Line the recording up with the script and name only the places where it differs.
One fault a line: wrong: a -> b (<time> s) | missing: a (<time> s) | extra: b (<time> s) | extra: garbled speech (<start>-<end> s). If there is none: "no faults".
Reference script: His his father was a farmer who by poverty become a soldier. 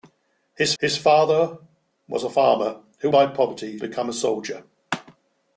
no faults